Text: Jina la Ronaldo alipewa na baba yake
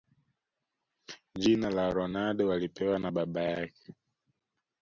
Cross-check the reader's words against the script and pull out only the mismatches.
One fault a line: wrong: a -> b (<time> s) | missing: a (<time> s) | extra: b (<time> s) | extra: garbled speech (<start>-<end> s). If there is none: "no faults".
no faults